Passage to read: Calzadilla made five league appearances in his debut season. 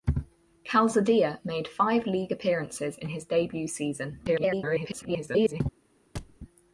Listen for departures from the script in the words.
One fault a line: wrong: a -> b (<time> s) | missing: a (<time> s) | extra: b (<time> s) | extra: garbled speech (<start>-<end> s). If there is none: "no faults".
extra: garbled speech (4.3-5.6 s)